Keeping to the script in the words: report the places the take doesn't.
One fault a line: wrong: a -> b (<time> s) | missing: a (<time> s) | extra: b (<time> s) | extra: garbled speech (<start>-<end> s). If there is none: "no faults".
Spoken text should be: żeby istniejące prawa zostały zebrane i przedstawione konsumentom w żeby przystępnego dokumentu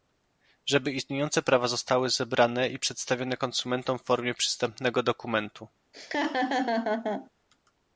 wrong: żeby -> formie (4.0 s)